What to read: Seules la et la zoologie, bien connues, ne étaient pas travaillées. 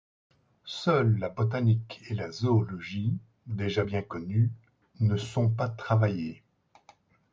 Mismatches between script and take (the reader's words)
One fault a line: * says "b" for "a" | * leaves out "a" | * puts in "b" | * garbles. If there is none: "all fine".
* puts in "botanique"
* puts in "déjà"
* says "sont" for "étaient"